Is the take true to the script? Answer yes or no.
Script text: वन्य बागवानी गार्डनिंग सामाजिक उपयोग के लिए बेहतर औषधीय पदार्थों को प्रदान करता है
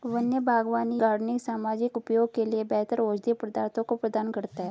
yes